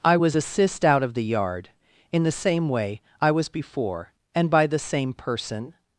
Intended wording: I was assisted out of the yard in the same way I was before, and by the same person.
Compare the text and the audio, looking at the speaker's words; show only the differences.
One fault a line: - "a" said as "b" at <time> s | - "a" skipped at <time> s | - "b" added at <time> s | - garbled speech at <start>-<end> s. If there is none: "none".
- "assisted" said as "assist" at 0.4 s